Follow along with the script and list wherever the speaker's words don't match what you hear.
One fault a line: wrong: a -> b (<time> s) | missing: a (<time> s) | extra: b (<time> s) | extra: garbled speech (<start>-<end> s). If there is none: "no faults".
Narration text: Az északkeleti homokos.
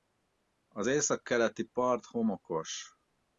extra: part (1.6 s)